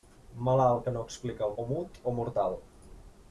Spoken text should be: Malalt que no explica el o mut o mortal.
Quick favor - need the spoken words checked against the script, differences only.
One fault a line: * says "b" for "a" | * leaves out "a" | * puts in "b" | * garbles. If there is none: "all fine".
all fine